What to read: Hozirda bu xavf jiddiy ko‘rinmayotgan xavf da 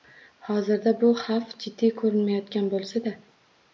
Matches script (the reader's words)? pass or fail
fail